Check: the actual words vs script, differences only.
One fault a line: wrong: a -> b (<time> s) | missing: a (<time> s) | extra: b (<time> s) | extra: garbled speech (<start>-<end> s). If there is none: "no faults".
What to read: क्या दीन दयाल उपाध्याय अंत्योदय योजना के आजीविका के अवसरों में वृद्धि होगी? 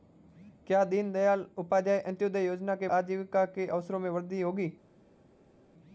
no faults